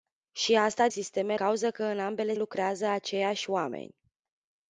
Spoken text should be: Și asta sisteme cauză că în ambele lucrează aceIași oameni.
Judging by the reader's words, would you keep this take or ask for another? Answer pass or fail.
pass